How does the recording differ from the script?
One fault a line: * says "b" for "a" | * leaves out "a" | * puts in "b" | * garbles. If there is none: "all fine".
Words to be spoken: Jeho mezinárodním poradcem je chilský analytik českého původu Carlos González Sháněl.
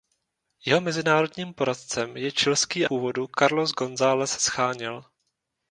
* leaves out "analytik českého"